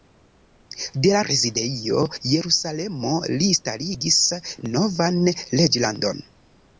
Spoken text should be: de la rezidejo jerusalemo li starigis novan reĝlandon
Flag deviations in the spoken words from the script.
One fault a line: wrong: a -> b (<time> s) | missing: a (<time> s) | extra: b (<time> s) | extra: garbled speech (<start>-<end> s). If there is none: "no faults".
no faults